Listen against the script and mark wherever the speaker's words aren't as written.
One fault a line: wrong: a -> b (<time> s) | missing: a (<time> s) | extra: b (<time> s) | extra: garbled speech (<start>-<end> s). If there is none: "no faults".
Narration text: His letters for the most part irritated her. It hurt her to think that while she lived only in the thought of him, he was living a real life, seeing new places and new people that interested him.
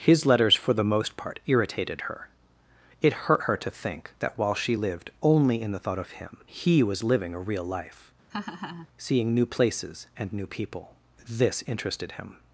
wrong: that -> this (11.3 s)